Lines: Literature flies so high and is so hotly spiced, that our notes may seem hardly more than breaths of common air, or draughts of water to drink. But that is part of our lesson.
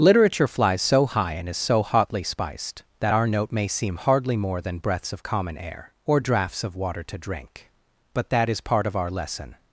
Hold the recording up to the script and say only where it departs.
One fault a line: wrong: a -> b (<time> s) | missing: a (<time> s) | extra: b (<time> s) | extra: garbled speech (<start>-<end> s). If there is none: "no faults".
wrong: notes -> note (3.3 s)